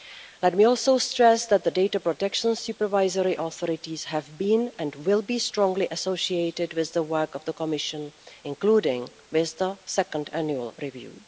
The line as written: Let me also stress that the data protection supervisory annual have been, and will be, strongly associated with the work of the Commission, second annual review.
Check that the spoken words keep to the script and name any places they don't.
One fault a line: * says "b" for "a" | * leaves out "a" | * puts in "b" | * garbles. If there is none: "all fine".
* says "authorities" for "annual"
* puts in "including with the"